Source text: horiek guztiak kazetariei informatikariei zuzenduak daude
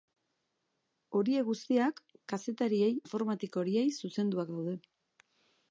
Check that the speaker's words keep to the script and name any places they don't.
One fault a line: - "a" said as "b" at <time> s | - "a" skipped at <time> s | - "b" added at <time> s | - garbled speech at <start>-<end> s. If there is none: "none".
none